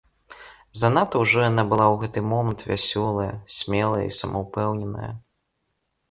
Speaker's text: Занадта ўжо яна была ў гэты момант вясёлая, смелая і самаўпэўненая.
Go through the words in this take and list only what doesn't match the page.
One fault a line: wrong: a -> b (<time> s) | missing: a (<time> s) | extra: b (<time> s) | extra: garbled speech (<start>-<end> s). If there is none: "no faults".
no faults